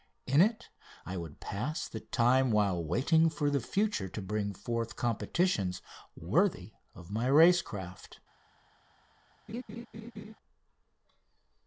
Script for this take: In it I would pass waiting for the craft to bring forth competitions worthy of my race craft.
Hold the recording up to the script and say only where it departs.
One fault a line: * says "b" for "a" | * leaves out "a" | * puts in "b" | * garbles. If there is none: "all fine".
* puts in "the time while"
* says "future" for "craft"